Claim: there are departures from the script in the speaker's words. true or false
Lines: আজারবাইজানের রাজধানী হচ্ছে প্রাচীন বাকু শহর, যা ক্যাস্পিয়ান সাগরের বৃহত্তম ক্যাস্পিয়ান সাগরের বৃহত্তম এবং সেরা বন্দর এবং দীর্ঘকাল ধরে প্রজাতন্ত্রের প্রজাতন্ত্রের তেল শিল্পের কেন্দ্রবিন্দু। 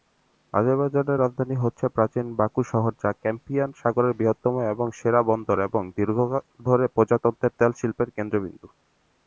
true